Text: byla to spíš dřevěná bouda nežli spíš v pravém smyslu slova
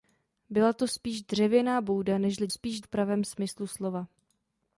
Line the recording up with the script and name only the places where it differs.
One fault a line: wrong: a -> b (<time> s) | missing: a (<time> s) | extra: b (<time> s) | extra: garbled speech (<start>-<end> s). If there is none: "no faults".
no faults